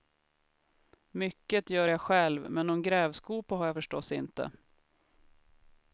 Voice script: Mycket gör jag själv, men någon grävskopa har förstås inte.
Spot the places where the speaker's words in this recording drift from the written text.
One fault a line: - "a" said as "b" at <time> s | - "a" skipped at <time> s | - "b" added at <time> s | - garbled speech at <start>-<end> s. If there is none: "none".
- "jag" added at 3.7 s